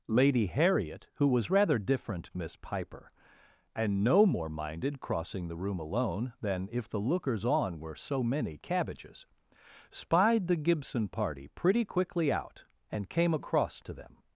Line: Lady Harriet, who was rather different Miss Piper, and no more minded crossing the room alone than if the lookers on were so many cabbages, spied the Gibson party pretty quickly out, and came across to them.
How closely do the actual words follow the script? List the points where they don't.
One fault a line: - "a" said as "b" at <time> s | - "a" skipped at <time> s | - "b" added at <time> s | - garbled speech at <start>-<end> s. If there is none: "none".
none